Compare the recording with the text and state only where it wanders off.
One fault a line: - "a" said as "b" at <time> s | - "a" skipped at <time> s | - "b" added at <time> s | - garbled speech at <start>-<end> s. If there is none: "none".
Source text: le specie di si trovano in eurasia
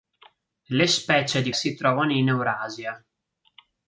none